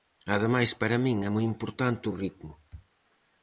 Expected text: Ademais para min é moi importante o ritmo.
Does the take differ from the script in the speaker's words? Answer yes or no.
no